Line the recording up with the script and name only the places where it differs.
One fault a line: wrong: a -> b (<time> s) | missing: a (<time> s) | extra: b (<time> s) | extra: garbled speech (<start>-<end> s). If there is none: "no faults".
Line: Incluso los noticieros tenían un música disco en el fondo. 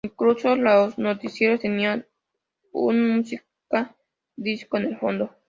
no faults